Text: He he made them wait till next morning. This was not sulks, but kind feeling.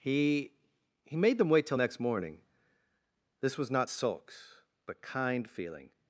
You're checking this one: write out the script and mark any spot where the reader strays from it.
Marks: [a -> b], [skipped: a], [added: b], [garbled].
He he made them wait till next morning. This was not sulks, but kind feeling.